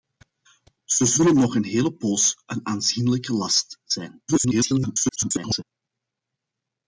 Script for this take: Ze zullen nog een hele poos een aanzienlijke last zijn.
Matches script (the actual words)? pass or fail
fail